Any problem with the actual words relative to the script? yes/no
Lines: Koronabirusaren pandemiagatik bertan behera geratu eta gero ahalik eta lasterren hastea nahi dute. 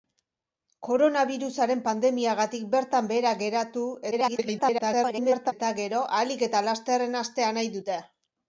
yes